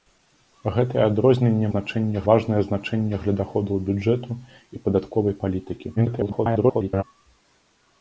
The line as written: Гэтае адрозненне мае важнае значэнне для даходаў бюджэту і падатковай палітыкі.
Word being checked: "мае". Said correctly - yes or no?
no